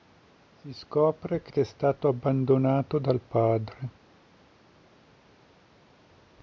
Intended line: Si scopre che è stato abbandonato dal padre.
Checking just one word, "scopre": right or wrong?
right